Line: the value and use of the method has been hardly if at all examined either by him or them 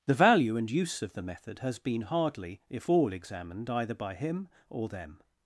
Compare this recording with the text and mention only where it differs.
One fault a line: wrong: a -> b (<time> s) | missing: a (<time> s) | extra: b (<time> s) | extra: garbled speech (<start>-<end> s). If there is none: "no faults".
missing: at (2.9 s)